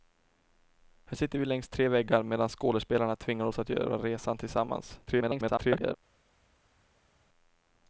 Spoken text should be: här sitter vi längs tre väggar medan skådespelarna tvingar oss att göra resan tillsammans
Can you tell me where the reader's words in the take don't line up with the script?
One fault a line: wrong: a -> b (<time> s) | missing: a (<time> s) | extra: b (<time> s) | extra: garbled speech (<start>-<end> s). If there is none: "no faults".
extra: garbled speech (5.1-6.0 s)